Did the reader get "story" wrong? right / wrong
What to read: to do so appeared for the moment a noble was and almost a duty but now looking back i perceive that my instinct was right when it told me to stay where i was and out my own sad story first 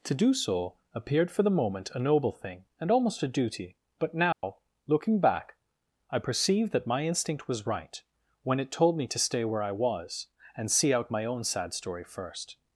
right